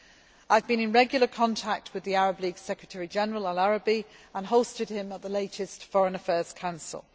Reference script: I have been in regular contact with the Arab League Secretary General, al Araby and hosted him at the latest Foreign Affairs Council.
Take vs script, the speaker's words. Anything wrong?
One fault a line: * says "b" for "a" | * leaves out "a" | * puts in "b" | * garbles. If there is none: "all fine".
all fine